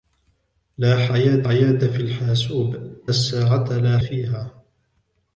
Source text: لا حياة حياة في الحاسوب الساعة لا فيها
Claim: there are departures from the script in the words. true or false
false